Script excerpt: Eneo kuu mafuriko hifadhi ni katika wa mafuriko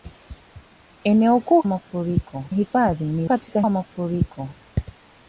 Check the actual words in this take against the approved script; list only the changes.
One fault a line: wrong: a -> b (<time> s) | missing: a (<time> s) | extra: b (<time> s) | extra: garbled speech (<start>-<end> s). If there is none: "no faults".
no faults